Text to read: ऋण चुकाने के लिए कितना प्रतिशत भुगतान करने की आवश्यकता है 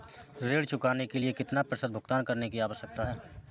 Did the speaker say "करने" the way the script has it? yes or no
yes